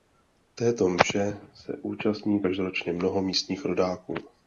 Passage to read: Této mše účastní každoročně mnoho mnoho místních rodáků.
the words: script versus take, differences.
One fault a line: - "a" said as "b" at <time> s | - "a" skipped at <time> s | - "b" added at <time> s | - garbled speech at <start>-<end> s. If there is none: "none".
- "se" added at 1.5 s
- "mnoho" skipped at 3.2 s